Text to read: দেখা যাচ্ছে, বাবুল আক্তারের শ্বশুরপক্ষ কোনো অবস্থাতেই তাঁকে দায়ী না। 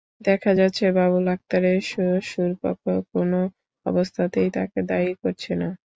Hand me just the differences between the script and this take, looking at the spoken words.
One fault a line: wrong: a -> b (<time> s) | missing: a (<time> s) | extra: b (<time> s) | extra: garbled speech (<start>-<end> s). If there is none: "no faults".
extra: করছে (5.2 s)